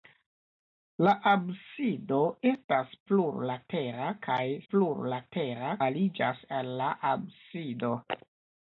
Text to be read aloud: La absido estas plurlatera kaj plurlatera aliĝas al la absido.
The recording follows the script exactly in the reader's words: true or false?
true